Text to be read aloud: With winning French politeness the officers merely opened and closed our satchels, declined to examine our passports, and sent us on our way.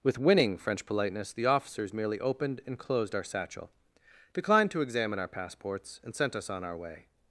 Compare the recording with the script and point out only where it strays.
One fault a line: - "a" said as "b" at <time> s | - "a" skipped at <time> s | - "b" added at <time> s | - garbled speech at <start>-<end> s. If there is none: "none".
- "satchels" said as "satchel" at 3.2 s